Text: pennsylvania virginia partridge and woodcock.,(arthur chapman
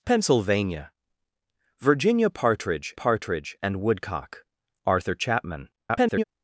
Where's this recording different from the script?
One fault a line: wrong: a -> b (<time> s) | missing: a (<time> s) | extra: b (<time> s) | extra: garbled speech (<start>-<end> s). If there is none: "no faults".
extra: partridge (2.9 s)
extra: garbled speech (5.8-6.2 s)